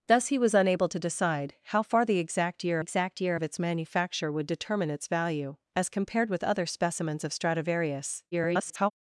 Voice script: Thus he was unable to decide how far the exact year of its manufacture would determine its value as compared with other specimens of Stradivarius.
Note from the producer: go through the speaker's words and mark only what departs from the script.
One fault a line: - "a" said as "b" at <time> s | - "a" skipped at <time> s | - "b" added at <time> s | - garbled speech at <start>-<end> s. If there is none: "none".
- "exact year" added at 2.8 s
- garbled speech at 8.3-8.9 s